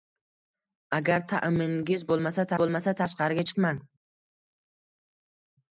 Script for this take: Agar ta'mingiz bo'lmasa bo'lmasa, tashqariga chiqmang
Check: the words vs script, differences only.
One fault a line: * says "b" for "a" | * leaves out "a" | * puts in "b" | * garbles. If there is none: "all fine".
all fine